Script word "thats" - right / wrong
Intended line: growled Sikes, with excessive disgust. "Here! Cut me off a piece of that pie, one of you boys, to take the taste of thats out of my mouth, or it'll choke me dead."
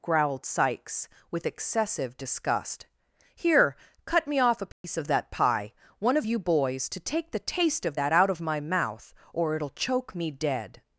wrong